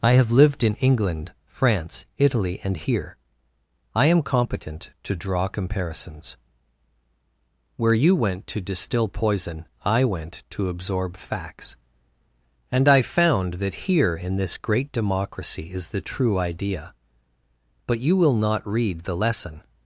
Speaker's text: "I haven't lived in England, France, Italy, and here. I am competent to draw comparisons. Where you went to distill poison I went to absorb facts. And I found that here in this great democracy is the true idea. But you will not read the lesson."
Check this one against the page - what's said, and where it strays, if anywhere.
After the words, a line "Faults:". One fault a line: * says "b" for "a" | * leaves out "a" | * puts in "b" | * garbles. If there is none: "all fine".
"I have lived in England, France, Italy, and here. I am competent to draw comparisons. Where you went to distill poison I went to absorb facts. And I found that here in this great democracy is the true idea. But you will not read the lesson."
Faults:
* says "have" for "haven't"